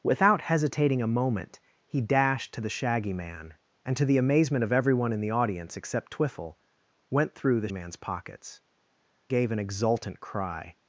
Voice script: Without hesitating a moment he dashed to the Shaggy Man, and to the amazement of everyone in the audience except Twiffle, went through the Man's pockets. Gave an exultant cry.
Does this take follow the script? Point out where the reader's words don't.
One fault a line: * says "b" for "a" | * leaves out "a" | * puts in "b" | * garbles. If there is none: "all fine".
all fine